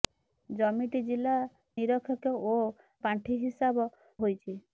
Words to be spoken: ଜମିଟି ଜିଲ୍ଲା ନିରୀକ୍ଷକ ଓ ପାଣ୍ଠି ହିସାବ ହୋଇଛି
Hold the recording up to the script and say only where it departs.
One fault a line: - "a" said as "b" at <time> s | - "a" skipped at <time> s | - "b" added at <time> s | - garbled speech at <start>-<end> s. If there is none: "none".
none